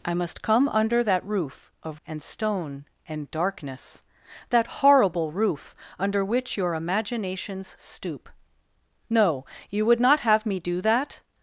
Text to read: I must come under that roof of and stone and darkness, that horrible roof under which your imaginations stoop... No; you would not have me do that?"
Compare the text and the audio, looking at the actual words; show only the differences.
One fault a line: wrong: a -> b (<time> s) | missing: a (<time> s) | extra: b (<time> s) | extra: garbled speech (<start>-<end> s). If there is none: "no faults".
no faults